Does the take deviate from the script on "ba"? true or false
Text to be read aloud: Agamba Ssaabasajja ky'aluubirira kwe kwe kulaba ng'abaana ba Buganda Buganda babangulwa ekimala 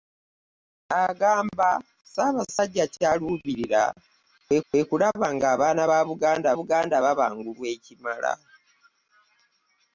false